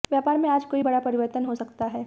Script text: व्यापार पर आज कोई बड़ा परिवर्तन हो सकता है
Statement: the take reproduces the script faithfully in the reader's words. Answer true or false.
false